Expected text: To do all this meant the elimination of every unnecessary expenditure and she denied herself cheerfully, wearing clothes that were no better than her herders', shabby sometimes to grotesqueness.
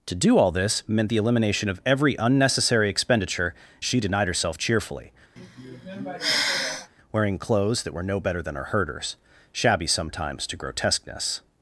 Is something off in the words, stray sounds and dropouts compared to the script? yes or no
yes